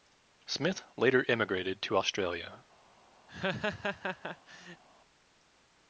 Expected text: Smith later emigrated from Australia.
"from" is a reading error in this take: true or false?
true